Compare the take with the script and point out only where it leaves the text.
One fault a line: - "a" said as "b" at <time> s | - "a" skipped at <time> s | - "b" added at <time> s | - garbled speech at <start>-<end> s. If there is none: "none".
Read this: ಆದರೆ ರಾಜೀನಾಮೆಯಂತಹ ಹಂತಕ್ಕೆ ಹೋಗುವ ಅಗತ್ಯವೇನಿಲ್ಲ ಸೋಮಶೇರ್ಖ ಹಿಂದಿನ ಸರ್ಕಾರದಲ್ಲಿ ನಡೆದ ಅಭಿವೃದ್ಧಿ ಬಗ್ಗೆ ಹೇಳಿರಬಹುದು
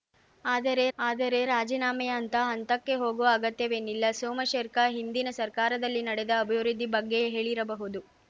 - "ಆದರೆ" added at 1.0 s